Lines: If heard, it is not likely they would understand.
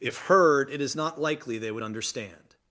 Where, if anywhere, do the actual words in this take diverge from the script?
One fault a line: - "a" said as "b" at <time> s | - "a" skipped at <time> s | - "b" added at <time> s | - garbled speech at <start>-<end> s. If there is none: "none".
none